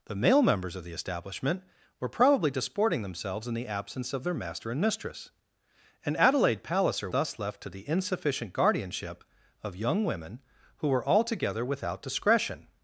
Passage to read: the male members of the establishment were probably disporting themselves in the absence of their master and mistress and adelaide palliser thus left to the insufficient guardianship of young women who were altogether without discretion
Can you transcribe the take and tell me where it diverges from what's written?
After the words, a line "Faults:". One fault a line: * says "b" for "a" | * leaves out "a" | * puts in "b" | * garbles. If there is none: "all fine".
the male members of the establishment were probably disporting themselves in the absence of their master and mistress and adelaide palliser thus left to the insufficient guardianship of young women who were altogether without discretion
Faults:
all fine